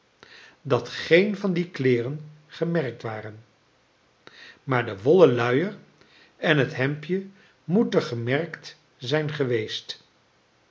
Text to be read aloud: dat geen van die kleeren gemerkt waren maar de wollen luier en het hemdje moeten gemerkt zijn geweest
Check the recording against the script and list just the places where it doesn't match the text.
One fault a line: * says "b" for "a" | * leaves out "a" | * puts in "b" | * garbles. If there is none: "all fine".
all fine